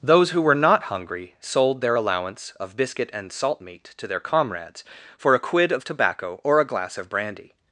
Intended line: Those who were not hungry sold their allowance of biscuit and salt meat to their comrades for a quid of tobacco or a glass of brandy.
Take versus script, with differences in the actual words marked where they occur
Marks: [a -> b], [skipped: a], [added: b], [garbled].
Those who were not hungry sold their allowance of biscuit and salt meat to their comrades for a quid of tobacco or a glass of brandy.